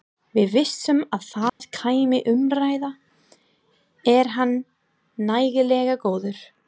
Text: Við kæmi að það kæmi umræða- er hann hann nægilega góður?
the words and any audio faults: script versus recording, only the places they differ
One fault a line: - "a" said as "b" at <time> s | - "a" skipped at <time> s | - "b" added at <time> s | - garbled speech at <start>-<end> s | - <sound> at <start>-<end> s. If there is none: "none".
- "kæmi" said as "vissum" at 0.5 s
- dropout at 1.5-1.6 s
- "hann" skipped at 4.6 s